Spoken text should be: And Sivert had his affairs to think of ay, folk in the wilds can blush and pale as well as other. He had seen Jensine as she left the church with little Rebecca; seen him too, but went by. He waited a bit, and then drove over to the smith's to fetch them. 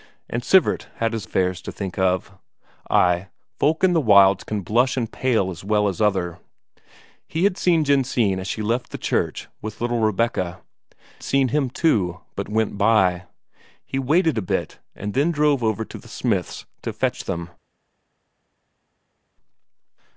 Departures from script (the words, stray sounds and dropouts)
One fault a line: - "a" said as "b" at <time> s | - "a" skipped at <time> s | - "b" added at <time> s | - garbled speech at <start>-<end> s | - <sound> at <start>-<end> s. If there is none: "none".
none